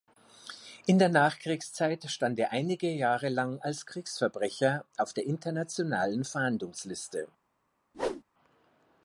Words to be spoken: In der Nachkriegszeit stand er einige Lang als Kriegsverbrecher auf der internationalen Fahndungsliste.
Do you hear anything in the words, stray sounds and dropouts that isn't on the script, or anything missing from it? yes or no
yes